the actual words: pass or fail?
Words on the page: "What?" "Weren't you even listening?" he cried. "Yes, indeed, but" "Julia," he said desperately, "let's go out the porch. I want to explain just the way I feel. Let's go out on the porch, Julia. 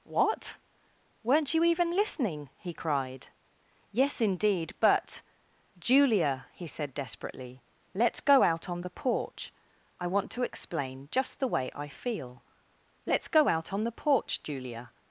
fail